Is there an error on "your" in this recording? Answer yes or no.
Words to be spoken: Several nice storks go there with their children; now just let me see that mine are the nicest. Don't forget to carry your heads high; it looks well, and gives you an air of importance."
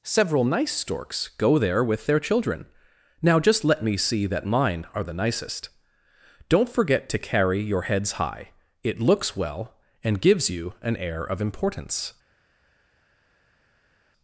no